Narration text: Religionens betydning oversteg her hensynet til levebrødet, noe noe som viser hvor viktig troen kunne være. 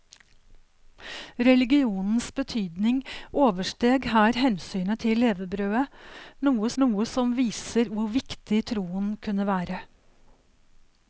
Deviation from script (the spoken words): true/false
false